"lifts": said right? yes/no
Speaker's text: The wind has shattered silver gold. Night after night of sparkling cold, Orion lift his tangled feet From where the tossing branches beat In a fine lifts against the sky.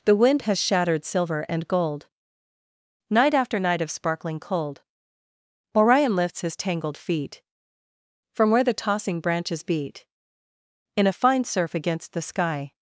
no